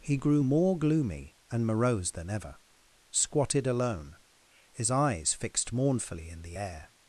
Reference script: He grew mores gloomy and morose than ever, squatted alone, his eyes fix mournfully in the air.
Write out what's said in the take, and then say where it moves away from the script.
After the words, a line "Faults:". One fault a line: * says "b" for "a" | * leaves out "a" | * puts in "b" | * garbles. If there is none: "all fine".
He grew more gloomy and morose than ever, squatted alone, his eyes fixed mournfully in the air.
Faults:
* says "more" for "mores"
* says "fixed" for "fix"